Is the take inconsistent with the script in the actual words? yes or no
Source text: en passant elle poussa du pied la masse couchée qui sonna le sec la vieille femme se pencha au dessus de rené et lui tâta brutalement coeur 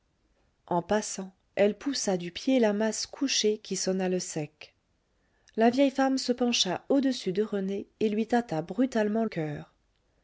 no